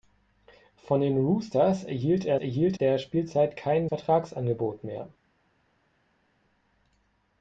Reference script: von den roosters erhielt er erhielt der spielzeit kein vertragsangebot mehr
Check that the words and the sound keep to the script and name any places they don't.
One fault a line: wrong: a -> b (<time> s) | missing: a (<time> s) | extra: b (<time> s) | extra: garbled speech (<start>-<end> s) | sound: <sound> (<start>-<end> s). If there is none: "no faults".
no faults